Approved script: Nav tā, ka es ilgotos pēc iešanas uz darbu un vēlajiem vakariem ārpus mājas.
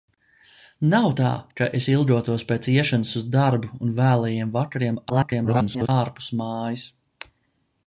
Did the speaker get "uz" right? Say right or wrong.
right